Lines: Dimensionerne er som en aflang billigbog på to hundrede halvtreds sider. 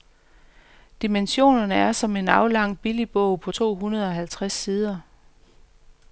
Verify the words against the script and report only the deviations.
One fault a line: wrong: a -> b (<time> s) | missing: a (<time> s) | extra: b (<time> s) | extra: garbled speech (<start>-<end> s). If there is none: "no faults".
no faults